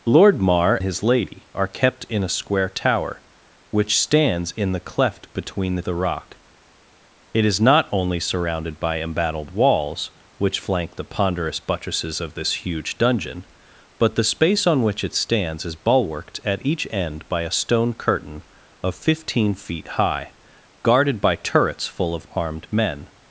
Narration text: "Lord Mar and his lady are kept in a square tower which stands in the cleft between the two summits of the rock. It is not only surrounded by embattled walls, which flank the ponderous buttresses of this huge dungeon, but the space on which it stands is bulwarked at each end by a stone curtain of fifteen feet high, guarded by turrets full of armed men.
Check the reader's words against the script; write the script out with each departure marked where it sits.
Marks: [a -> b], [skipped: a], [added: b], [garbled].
"Lord Mar [skipped: and] his lady are kept in a square tower which stands in the cleft between the [skipped: two summits of] the rock. It is not only surrounded by embattled walls, which flank the ponderous buttresses of this huge dungeon, but the space on which it stands is bulwarked at each end by a stone curtain of fifteen feet high, guarded by turrets full of armed men.